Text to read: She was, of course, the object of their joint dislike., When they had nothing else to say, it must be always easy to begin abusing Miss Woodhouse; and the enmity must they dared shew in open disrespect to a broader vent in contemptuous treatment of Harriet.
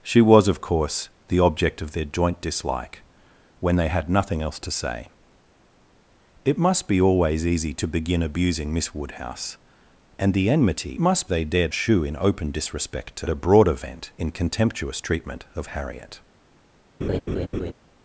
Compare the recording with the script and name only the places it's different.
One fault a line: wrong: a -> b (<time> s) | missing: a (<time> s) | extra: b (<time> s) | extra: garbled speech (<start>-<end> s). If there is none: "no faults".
no faults